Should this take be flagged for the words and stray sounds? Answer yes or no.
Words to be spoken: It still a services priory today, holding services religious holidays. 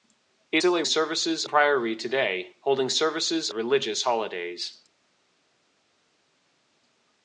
no